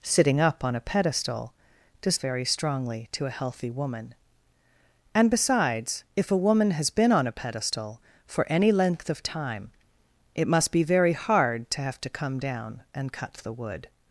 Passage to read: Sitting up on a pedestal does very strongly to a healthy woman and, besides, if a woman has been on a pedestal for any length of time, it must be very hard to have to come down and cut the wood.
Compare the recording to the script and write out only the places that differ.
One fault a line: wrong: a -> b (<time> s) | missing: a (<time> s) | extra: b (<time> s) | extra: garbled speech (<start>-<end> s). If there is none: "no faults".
no faults